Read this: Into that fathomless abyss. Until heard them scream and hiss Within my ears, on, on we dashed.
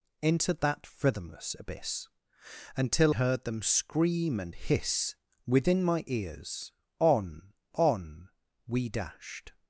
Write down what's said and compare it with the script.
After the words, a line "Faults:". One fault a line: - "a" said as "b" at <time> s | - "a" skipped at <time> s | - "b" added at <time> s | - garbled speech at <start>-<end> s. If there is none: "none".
Into that fathomless abyss. Until heard them scream and hiss Within my ears, on, on we dashed.
Faults:
none